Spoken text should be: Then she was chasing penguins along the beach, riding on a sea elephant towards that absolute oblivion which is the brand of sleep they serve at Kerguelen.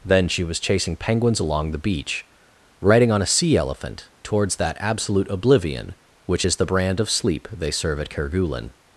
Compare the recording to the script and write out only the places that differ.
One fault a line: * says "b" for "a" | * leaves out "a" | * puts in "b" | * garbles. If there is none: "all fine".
all fine